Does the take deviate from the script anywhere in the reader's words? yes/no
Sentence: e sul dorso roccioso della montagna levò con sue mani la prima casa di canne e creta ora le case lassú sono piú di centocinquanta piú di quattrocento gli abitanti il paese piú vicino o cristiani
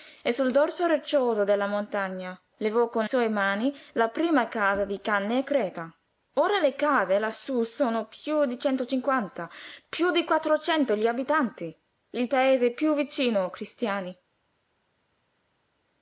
no